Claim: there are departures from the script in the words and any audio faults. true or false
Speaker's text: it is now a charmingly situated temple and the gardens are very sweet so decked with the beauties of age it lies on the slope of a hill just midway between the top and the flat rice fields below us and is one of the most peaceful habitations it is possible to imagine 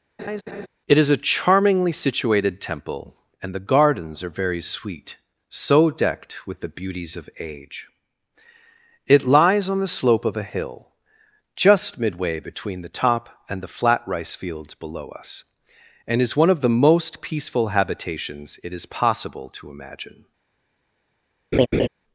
true